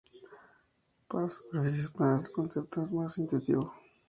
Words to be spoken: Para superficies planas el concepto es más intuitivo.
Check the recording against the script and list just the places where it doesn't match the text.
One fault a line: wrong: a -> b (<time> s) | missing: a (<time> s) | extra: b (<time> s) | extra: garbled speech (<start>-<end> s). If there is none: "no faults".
no faults